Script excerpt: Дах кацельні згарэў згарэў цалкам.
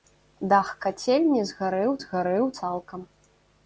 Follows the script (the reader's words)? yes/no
yes